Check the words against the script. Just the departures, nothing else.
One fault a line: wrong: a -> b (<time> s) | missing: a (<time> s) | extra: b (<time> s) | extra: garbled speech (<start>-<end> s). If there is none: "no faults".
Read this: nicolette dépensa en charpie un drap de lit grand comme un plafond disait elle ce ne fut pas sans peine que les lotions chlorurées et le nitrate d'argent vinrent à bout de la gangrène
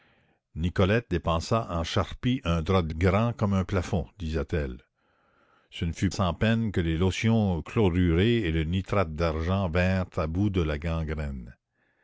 missing: lit (3.0 s)
missing: pas (6.1 s)